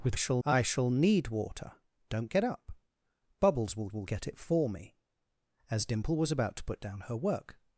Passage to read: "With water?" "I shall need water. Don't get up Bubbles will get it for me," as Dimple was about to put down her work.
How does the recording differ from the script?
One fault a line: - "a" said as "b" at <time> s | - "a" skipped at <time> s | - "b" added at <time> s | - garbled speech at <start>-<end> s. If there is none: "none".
- "water" said as "shall" at 0.1 s
- "will" added at 3.9 s